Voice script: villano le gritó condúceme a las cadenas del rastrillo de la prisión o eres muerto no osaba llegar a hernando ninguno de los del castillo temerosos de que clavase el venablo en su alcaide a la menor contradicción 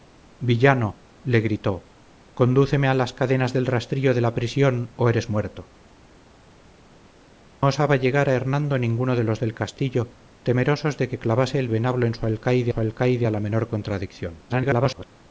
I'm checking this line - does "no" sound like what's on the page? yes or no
no